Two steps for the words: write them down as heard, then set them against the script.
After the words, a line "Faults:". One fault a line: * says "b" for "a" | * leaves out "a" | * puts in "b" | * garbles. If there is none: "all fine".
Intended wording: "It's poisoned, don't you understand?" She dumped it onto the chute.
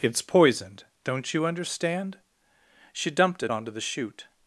"It's poisoned, don't you understand?" She dumped it onto the chute.
Faults:
all fine